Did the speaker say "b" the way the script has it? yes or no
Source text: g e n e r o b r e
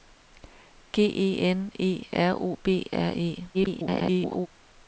yes